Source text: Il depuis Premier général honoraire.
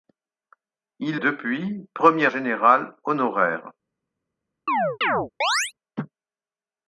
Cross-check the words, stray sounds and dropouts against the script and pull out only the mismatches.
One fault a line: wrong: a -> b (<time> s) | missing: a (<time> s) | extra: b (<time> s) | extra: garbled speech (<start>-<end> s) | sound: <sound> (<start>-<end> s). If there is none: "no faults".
sound: chirp (4.7-5.7 s)